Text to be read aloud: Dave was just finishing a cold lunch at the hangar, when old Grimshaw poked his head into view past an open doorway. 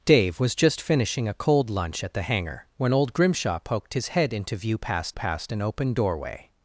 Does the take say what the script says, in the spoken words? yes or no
no